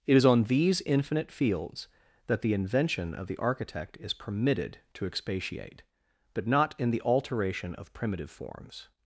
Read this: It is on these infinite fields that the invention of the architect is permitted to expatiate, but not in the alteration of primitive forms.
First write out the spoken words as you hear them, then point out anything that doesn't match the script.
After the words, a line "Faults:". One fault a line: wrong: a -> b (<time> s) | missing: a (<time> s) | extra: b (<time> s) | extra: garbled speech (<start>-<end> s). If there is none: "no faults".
It is on these infinite fields that the invention of the architect is permitted to expatiate, but not in the alteration of primitive forms.
Faults:
no faults